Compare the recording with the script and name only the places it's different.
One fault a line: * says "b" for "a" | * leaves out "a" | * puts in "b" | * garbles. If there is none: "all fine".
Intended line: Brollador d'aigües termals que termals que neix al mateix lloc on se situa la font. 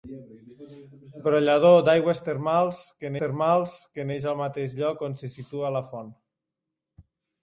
all fine